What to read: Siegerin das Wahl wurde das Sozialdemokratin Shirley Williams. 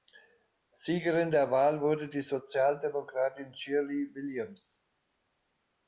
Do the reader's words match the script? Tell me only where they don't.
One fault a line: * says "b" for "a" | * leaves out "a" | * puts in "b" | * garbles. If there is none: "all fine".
* says "der" for "das"
* says "die" for "das"